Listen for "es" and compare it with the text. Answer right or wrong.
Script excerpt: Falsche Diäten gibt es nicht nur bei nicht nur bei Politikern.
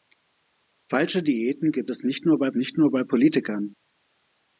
right